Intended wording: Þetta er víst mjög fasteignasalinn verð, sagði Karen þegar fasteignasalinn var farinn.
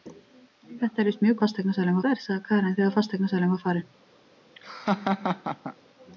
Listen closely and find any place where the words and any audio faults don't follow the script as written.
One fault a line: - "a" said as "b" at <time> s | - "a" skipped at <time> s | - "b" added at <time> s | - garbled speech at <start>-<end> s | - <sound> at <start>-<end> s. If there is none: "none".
- laugh at 4.6-5.8 s